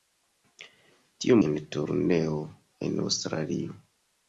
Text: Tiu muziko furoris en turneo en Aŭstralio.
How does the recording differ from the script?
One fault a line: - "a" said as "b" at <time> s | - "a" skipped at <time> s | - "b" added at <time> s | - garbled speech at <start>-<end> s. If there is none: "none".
- "muziko furoris" skipped at 1.4 s